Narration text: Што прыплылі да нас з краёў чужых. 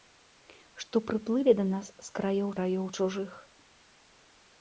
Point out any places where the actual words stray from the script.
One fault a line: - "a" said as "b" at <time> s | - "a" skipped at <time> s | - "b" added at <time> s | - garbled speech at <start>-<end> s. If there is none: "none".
- "краёў" added at 2.6 s